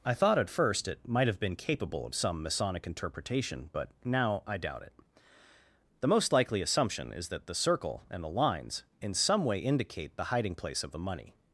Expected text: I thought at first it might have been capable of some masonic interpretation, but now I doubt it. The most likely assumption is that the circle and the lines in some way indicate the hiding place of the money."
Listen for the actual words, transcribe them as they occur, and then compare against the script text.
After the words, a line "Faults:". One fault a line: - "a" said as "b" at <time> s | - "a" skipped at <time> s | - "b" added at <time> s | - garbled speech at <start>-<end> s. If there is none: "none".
I thought at first it might have been capable of some masonic interpretation, but now I doubt it. The most likely assumption is that the circle and the lines in some way indicate the hiding place of the money."
Faults:
none